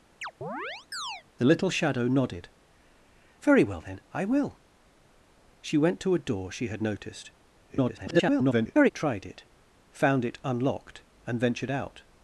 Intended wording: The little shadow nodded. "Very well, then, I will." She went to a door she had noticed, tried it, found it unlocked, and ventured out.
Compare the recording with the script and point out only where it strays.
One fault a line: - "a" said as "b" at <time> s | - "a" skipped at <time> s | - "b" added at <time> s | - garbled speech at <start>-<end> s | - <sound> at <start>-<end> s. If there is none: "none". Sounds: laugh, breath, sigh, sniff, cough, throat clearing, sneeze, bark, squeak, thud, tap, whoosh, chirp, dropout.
- chirp at 0.2-1.2 s
- garbled speech at 7.7-8.9 s